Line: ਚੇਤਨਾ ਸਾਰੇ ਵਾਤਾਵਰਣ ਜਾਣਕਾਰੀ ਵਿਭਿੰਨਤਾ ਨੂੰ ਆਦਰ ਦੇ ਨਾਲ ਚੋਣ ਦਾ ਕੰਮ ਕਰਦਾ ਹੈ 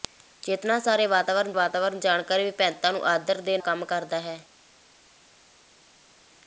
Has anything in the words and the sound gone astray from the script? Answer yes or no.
yes